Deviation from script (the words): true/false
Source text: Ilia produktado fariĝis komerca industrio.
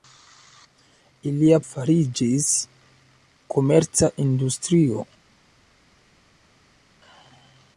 true